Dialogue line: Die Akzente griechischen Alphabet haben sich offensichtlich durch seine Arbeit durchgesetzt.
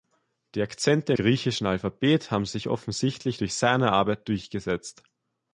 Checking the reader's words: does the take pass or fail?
pass